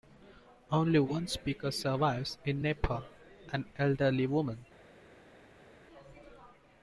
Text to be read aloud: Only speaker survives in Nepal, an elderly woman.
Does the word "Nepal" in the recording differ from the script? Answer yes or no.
no